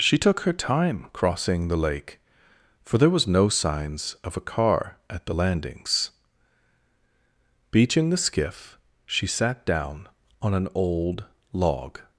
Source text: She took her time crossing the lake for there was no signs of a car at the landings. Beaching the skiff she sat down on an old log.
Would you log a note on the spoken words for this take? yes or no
no